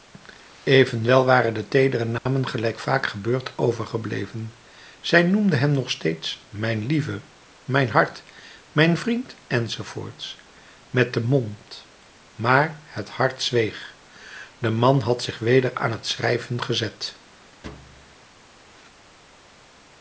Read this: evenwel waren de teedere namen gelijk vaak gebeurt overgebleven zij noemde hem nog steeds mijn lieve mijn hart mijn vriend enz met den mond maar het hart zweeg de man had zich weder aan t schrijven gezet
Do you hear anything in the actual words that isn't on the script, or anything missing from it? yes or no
no